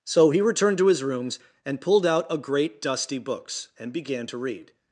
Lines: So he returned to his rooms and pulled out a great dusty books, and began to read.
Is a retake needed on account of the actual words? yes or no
no